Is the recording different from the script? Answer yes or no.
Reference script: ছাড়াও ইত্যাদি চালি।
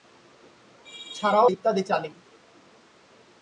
no